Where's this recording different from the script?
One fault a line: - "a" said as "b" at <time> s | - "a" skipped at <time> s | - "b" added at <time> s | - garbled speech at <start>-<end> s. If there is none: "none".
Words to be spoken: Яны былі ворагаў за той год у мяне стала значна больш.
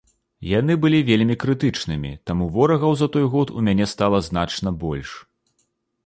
- "вельмі крытычнымі таму" added at 1.1 s